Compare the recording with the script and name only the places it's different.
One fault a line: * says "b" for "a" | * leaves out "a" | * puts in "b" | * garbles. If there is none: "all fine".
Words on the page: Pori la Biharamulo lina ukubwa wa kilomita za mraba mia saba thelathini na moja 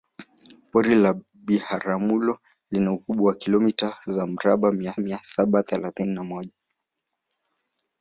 * puts in "mia"